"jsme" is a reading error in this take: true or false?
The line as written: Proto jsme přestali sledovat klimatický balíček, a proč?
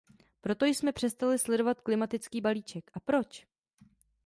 false